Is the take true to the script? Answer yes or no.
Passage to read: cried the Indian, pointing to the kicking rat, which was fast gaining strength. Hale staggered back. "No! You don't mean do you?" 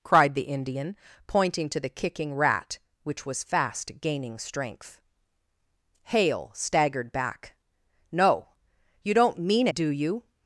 yes